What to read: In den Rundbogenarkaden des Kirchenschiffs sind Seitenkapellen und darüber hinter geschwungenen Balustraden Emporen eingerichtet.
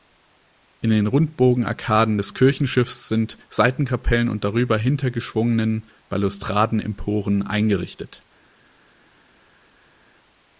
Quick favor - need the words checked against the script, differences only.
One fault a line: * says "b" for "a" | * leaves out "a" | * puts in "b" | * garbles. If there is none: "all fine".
all fine